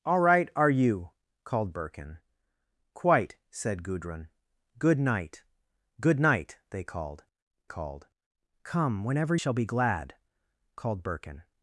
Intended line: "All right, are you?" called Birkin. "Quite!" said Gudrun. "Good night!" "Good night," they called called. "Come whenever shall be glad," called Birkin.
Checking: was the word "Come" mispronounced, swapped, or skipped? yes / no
no